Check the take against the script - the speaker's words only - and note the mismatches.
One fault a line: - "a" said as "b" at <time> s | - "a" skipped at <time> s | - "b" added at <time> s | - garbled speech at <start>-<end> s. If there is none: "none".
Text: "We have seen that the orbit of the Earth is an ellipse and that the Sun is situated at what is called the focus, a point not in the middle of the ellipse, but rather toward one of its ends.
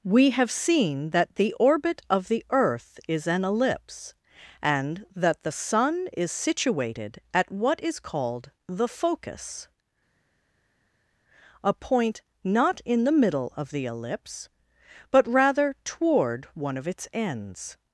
none